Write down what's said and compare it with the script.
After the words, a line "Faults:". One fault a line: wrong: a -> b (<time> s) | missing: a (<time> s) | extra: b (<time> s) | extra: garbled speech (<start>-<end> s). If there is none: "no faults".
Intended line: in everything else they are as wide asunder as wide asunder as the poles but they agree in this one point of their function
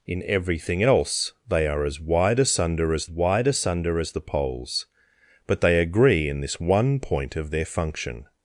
in everything else they are as wide asunder as wide asunder as the poles but they agree in this one point of their function
Faults:
no faults